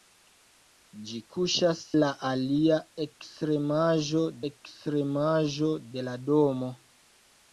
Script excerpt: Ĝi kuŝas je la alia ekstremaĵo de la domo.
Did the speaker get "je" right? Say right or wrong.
wrong